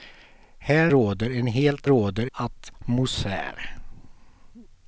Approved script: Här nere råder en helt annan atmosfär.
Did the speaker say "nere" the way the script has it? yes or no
no